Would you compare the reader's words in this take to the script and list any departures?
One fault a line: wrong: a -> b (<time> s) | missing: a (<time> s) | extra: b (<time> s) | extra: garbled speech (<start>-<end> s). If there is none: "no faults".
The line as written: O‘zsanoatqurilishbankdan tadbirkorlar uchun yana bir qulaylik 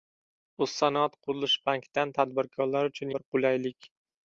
missing: yana (3.1 s)